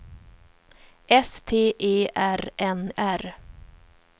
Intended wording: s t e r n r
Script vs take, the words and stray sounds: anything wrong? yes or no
no